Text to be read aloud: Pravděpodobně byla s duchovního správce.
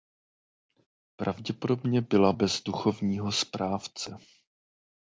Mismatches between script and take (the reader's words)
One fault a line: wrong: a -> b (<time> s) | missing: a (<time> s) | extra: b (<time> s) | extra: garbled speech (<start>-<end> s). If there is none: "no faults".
wrong: s -> bez (2.3 s)